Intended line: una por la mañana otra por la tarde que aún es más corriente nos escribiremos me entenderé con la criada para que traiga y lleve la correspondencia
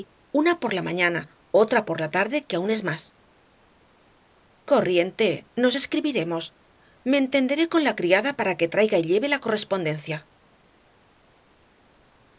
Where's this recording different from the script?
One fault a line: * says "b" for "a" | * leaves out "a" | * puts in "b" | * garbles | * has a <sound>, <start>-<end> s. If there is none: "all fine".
all fine